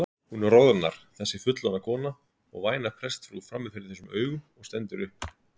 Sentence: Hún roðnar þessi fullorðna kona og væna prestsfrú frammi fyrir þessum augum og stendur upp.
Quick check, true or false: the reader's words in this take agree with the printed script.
true